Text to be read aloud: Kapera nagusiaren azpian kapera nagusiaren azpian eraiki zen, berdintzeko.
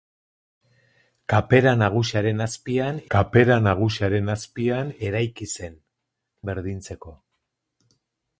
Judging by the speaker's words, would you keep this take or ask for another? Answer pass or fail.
pass